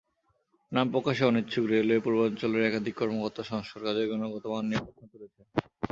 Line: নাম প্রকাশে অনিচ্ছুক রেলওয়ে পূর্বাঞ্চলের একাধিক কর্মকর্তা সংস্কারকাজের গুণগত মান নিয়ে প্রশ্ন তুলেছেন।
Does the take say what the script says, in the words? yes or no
yes